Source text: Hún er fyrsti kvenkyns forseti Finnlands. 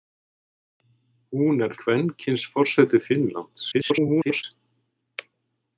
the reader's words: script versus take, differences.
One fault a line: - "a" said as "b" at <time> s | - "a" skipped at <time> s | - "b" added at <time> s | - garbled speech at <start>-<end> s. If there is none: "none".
- "fyrsti" skipped at 1.8 s
- garbled speech at 3.7-4.4 s